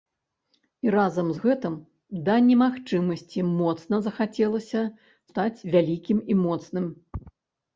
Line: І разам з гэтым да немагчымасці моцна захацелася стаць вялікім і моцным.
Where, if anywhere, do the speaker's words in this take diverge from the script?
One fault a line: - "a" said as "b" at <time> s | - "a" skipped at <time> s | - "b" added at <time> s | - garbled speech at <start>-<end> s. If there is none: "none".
none